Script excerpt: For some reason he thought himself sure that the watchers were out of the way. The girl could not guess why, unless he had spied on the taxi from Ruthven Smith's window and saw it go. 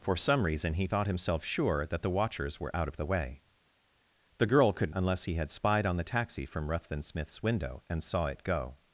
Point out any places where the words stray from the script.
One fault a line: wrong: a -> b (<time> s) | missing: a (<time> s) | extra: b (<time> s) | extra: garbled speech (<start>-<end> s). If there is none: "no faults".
missing: not guess why (4.9 s)